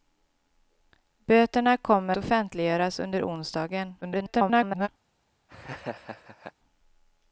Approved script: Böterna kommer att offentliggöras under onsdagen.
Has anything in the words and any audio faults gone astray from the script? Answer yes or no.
yes